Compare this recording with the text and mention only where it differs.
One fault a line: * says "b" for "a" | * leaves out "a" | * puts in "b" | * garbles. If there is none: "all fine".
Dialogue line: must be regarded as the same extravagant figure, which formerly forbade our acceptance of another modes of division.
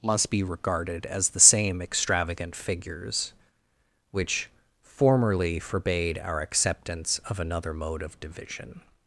* says "figures" for "figure"
* says "mode" for "modes"